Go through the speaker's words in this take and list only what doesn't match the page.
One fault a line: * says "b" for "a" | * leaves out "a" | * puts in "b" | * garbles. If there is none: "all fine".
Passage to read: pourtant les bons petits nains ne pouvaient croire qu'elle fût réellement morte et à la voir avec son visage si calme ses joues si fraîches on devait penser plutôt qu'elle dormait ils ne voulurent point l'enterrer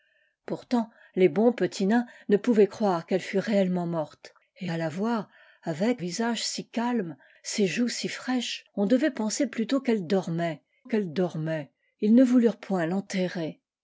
* leaves out "son"
* puts in "qu'elle dormait"